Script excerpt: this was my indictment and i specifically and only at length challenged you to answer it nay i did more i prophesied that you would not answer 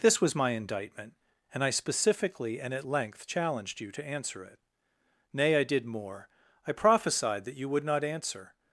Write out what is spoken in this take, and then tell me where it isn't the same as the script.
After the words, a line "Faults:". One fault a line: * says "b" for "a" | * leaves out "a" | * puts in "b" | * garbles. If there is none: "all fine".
this was my indictment and i specifically and at length challenged you to answer it nay i did more i prophesied that you would not answer
Faults:
* leaves out "only"